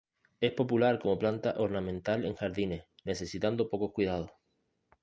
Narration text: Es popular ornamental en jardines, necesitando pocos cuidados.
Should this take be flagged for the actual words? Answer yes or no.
yes